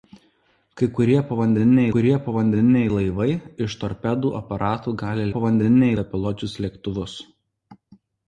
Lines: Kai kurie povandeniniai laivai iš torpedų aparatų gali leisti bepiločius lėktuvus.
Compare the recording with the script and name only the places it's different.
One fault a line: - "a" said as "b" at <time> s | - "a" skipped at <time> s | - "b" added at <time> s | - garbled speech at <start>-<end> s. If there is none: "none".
- "kurie povandeniniai" added at 1.9 s
- "leisti" said as "povandeniniai" at 5.4 s